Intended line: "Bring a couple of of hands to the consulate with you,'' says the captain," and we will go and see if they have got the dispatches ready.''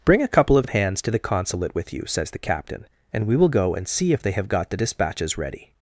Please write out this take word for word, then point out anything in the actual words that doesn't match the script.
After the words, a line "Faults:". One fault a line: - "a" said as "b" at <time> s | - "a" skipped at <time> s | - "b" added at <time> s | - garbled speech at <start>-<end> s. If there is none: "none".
"Bring a couple of of hands to the consulate with you,'' says the captain," and we will go and see if they have got the dispatches ready.''
Faults:
none